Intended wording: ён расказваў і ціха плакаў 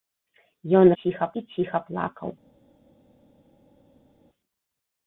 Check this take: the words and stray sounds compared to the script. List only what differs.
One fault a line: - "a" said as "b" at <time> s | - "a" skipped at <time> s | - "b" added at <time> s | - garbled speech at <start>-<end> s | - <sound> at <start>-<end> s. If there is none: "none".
- "расказваў" said as "ціха" at 1.0 s